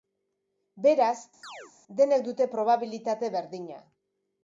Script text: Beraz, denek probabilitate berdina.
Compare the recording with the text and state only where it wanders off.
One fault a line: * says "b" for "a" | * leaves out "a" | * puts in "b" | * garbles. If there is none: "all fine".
* puts in "dute"